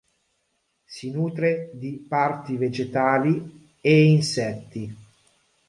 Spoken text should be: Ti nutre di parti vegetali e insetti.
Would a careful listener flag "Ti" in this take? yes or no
yes